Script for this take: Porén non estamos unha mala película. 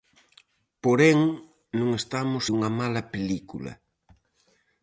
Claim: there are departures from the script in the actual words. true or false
false